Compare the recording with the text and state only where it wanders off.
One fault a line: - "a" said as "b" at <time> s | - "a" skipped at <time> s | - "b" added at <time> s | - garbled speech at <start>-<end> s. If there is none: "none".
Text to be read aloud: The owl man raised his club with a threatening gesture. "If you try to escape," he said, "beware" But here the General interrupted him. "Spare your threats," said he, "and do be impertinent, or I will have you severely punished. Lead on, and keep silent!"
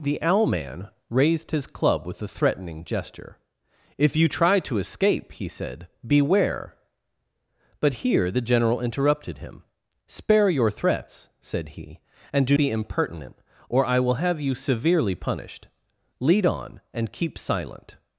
none